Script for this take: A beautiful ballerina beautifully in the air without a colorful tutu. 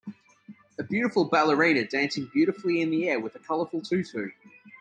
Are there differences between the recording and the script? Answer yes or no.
yes